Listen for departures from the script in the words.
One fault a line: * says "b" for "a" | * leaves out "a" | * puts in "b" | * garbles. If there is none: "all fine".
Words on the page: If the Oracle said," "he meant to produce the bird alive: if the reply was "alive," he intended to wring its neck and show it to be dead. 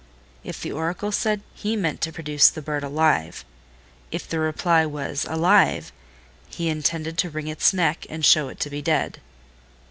all fine